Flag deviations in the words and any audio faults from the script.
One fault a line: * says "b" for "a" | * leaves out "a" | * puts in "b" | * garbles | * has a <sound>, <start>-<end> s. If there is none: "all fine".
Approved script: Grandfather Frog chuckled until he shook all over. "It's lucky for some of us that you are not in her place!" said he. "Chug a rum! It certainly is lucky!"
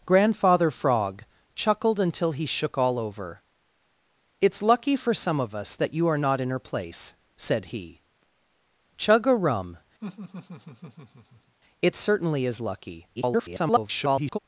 * has a laugh, 10.0-11.6 s
* garbles